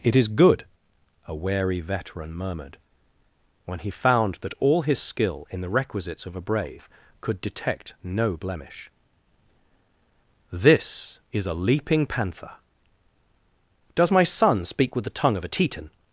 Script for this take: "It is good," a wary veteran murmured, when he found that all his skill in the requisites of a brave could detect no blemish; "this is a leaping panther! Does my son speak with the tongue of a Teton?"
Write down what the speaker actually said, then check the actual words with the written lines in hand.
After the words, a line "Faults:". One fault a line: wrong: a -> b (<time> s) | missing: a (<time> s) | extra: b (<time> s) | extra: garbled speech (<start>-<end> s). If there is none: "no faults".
"It is good," a wary veteran murmured, when he found that all his skill in the requisites of a brave could detect no blemish; "this is a leaping panther! Does my son speak with the tongue of a Teton?"
Faults:
no faults